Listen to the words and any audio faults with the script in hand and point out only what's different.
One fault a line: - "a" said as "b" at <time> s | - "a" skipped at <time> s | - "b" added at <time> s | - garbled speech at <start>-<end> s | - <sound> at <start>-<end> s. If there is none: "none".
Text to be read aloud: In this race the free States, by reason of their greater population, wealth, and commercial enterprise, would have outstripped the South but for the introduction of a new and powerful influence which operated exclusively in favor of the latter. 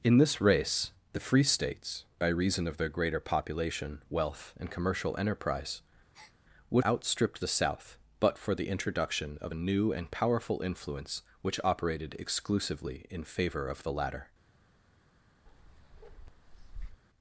- breath at 6.1-6.4 s
- "have" skipped at 6.8 s
- bark at 15.5-17.0 s